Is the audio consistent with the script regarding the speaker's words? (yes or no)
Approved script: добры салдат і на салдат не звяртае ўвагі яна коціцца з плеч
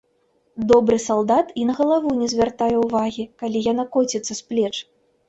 no